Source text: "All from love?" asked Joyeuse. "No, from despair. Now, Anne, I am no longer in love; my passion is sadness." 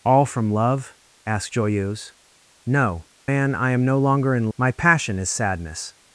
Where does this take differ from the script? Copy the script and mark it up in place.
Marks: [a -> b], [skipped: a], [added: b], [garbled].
"All from love?" asked Joyeuse. "No, [skipped: from despair. Now,] Anne, I am no longer in [skipped: love;] my passion is sadness."